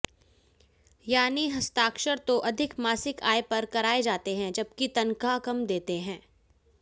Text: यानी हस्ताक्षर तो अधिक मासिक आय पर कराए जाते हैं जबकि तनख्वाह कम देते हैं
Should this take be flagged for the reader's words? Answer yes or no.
no